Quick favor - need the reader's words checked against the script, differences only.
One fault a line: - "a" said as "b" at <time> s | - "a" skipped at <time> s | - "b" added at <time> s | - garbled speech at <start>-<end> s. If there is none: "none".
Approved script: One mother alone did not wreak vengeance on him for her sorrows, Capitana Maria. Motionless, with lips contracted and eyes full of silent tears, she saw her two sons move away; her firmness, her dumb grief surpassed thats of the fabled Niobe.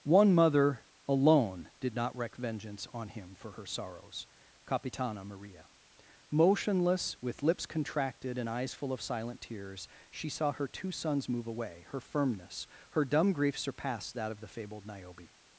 - "thats" said as "that" at 14.1 s